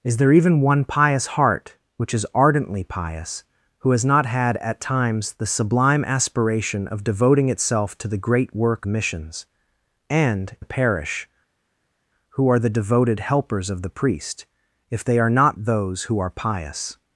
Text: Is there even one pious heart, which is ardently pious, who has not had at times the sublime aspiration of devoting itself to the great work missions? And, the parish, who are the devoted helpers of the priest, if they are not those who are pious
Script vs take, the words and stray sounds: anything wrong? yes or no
no